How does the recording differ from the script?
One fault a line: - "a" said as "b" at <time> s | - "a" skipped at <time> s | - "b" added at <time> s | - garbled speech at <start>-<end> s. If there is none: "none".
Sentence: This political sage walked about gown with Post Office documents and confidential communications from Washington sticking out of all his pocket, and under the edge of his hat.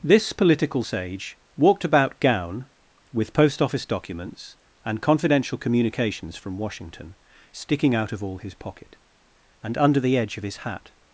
none